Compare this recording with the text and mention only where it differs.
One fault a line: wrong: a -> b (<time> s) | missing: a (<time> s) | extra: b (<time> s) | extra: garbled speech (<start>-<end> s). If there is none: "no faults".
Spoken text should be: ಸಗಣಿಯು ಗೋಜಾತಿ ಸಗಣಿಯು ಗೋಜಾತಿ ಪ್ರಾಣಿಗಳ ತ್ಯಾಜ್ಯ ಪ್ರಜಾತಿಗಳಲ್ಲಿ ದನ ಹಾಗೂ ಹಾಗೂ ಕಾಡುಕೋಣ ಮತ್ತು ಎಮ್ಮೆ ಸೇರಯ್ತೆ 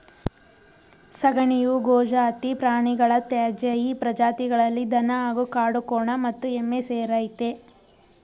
missing: ಸಗಣಿಯು ಗೋಜಾತಿ (2.5 s)
extra: ಈ (3.8 s)
missing: ಹಾಗೂ (5.4 s)